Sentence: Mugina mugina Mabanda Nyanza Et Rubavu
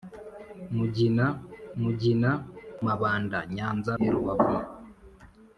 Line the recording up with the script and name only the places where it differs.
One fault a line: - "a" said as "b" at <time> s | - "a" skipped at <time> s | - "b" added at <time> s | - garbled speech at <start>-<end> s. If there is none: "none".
none